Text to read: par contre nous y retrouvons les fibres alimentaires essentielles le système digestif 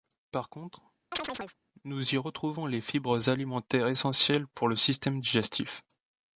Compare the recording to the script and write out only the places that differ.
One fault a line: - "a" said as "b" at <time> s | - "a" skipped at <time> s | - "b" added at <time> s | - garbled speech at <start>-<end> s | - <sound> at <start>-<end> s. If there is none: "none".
- chirp at 1.1-1.6 s
- "pour" added at 4.5 s